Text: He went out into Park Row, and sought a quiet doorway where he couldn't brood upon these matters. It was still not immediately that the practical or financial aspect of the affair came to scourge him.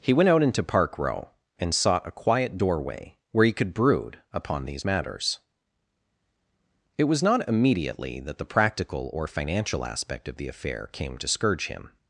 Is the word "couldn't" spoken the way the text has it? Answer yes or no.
no